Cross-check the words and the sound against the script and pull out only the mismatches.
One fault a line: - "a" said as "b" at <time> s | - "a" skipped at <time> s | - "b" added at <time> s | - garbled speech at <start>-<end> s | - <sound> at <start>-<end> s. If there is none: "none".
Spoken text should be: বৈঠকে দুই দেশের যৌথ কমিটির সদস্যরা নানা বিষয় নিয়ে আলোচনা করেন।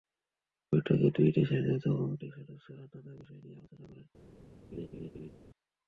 - laugh at 4.7-5.3 s